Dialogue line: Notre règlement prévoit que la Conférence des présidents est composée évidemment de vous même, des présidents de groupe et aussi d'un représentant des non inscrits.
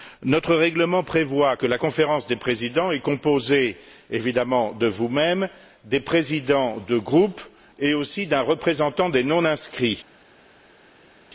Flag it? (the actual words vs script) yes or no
no